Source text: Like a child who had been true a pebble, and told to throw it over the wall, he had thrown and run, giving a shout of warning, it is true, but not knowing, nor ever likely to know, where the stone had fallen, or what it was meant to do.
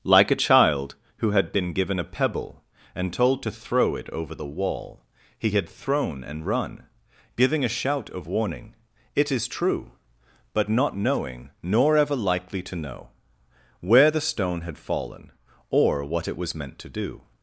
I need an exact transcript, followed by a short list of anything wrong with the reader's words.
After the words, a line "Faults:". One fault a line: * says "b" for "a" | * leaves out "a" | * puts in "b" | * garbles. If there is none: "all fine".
Like a child who had been given a pebble, and told to throw it over the wall, he had thrown and run, giving a shout of warning, it is true, but not knowing, nor ever likely to know, where the stone had fallen, or what it was meant to do.
Faults:
* says "given" for "true"